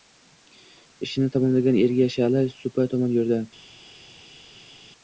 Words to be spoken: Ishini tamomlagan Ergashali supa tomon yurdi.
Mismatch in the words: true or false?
false